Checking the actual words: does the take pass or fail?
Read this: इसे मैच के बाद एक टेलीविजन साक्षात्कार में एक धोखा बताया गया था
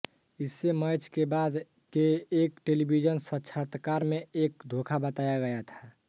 fail